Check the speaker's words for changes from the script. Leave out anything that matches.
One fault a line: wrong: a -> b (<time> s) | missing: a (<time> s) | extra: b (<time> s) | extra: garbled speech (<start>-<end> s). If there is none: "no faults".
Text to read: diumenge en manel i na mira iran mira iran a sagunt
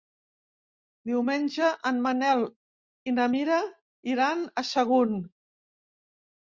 missing: mira iran (4.5 s)